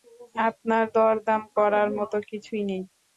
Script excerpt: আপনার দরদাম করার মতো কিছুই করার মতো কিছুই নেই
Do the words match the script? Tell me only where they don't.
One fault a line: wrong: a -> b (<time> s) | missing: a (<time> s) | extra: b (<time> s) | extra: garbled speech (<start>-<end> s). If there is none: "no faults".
missing: করার মতো কিছুই (2.6 s)